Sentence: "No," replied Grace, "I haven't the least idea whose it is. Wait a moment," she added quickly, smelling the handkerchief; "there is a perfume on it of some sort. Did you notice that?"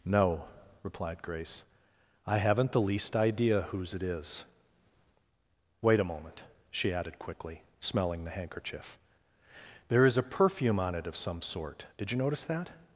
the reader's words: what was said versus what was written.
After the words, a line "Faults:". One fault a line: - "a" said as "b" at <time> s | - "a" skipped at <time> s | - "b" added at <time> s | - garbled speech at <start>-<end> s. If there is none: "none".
"No," replied Grace, "I haven't the least idea whose it is. Wait a moment," she added quickly, smelling the handkerchief; "there is a perfume on it of some sort. Did you notice that?"
Faults:
none